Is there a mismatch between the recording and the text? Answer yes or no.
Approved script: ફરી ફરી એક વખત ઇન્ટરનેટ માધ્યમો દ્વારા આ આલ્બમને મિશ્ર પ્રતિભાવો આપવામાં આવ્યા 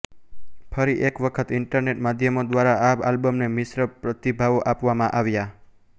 yes